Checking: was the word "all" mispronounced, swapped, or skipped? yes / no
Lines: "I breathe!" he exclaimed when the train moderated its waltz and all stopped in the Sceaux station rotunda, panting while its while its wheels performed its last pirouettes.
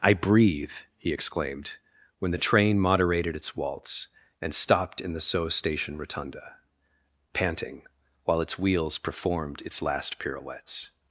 yes